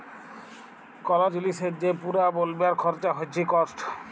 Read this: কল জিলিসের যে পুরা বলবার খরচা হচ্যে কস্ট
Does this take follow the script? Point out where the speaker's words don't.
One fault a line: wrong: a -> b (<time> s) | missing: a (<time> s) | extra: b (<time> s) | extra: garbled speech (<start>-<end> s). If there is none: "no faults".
no faults